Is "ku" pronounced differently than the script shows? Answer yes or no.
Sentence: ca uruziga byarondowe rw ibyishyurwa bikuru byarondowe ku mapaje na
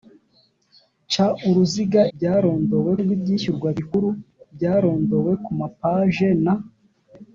no